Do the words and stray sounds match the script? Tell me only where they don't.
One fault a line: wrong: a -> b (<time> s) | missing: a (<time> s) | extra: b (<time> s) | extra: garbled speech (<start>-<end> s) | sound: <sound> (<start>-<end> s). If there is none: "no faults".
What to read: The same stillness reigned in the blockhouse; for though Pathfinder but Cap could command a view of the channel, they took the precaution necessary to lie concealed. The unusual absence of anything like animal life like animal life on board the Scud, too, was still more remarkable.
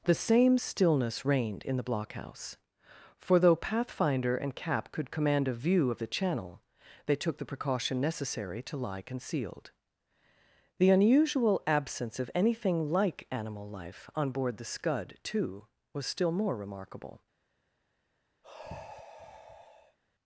wrong: but -> and (4.4 s)
missing: like animal life (14.1 s)
sound: sigh (18.4-20.0 s)